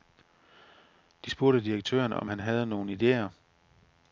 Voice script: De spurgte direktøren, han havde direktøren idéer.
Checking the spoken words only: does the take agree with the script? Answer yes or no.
no